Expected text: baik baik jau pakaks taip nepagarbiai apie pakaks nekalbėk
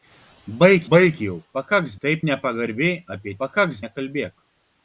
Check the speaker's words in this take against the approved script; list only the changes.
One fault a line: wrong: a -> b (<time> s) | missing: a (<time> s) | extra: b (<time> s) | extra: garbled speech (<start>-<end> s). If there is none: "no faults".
no faults